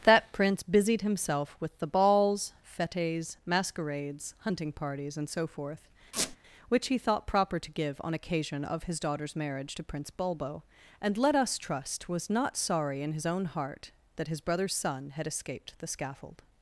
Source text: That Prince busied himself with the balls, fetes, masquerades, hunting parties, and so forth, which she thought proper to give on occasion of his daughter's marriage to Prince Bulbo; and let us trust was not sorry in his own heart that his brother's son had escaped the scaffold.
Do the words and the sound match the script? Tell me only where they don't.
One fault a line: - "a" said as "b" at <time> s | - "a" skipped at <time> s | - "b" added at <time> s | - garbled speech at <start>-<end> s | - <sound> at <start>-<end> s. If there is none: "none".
- squeak at 6.1-6.4 s
- "she" said as "he" at 6.9 s